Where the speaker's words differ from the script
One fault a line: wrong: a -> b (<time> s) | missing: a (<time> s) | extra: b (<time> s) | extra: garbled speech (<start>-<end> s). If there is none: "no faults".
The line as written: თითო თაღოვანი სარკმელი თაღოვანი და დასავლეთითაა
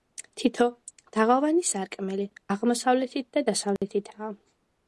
wrong: თაღოვანი -> აღმოსავლეთით (2.6 s)